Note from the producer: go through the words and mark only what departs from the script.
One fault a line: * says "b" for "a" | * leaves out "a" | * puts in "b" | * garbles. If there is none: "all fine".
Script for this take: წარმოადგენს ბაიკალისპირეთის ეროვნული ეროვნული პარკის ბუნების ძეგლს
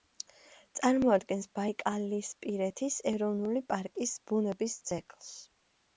* leaves out "ეროვნული"